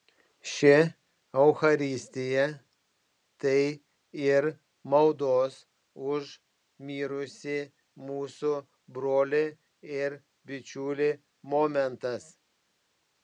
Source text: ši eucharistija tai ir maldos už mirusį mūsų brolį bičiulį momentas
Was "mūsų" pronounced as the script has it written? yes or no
yes